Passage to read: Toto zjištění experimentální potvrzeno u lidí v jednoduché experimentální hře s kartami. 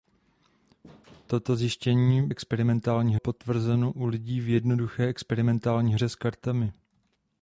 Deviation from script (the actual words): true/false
false